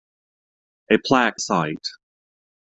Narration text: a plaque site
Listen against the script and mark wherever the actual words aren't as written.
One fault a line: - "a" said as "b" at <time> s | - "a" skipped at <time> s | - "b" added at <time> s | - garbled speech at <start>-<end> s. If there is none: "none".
none